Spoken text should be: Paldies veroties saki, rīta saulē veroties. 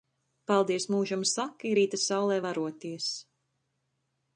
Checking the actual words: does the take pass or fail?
fail